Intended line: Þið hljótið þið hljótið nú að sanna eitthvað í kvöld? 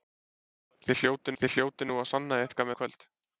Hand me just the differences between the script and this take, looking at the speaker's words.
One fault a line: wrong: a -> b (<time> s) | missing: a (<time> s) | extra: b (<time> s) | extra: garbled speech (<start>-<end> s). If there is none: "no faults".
no faults